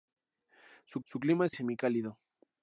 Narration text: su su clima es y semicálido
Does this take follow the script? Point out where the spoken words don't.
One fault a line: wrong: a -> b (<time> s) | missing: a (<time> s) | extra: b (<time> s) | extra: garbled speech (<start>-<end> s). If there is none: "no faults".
no faults